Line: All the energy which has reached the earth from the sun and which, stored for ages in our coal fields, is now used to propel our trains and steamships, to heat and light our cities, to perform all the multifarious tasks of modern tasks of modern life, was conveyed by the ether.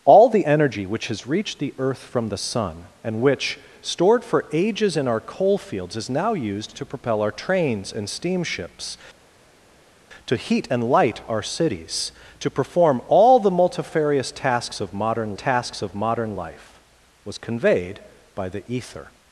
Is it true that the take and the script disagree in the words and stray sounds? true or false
false